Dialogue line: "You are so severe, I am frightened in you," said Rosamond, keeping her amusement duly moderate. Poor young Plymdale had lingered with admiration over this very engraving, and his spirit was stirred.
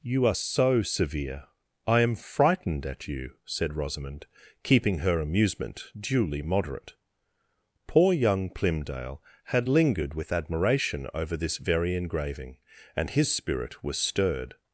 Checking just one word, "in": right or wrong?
wrong